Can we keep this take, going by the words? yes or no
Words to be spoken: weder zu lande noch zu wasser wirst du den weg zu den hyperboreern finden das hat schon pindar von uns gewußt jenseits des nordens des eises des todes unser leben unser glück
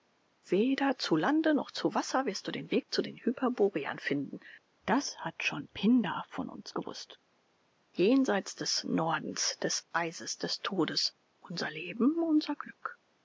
yes